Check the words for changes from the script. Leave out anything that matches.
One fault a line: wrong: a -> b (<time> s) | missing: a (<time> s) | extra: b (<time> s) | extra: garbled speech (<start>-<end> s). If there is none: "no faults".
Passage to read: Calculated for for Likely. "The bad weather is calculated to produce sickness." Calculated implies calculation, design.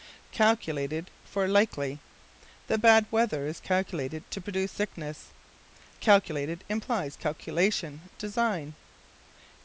missing: for (1.5 s)